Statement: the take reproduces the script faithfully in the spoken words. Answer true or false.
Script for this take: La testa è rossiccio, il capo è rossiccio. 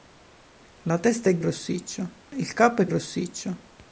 true